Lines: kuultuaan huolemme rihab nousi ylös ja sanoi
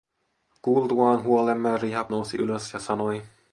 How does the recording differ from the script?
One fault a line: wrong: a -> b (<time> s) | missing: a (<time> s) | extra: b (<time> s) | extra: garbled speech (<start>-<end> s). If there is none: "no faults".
no faults